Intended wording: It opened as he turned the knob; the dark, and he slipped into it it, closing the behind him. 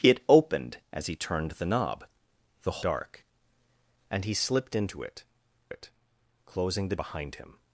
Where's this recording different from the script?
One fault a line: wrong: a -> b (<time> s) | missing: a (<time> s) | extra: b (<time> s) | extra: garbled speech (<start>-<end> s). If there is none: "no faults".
no faults